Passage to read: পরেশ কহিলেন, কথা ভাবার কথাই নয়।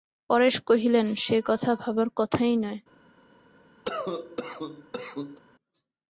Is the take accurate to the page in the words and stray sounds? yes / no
no